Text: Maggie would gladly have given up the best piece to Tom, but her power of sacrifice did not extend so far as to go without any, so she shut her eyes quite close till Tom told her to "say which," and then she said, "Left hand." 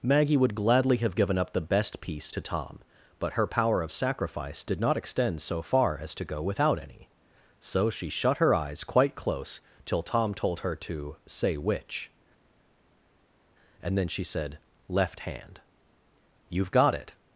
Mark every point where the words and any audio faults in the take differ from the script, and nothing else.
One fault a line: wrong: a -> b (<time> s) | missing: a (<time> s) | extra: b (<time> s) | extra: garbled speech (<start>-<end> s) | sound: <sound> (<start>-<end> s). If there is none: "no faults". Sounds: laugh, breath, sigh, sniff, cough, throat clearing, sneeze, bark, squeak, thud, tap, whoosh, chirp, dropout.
extra: You've got it (16.5 s)